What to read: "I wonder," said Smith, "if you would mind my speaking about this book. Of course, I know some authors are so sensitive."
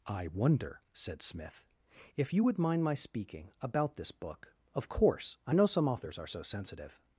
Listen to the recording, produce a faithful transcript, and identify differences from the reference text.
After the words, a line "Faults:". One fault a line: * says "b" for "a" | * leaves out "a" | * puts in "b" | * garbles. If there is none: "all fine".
"I wonder," said Smith, "if you would mind my speaking about this book. Of course, I know some authors are so sensitive."
Faults:
all fine